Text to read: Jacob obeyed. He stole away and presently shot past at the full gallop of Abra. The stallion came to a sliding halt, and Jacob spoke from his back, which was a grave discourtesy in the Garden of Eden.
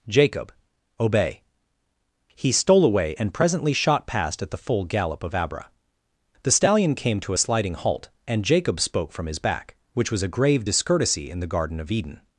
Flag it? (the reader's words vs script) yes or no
yes